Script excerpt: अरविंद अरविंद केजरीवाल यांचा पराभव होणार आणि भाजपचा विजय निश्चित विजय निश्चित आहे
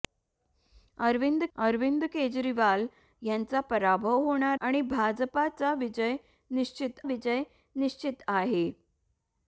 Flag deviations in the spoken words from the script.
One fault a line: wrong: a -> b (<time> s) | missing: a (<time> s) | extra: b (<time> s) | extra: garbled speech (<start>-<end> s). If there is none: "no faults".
no faults